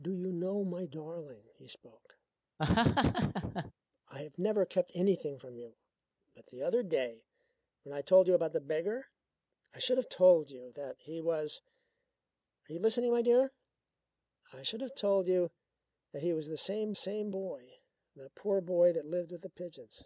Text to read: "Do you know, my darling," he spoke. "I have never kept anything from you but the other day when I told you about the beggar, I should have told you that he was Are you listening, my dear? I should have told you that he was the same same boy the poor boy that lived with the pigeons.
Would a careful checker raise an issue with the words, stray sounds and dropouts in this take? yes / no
yes